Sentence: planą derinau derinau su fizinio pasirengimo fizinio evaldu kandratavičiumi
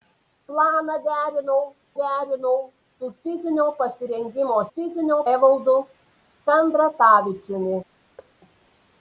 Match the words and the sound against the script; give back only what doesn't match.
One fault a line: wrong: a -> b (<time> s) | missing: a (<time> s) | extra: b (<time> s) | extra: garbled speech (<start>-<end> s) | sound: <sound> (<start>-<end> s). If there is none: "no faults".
sound: thud (8.2-8.3 s)